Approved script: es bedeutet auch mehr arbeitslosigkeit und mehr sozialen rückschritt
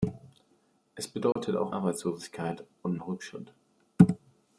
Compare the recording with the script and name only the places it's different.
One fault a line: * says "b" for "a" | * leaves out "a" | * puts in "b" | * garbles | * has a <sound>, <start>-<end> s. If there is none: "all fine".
* has a dropout, 1.3-1.4 s
* leaves out "mehr"
* leaves out "mehr sozialen"